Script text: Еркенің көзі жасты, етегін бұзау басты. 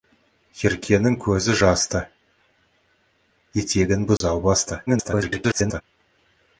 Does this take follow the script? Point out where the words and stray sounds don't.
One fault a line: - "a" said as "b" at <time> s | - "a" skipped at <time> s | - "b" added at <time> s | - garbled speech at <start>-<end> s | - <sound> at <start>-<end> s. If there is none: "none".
- dropout at 4.2-4.2 s
- garbled speech at 4.9-5.8 s